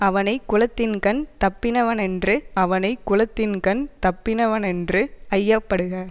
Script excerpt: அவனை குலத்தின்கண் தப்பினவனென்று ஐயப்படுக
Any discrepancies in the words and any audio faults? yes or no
yes